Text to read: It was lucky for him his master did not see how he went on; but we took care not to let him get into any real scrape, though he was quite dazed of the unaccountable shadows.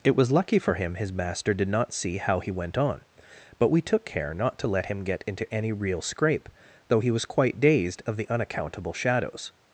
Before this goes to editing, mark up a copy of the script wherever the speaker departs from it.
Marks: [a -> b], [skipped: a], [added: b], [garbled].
It was lucky for him his master did not see how he went on; but we took care not to let him get into any real scrape, though he was quite dazed of the unaccountable shadows.